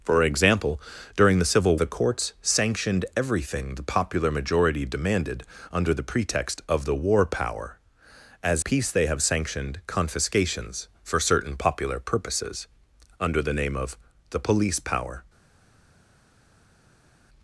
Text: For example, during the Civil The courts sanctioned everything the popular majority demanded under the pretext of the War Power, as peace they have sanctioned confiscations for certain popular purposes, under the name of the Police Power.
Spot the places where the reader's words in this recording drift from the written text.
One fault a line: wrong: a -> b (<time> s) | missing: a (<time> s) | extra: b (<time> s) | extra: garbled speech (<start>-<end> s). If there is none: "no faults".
no faults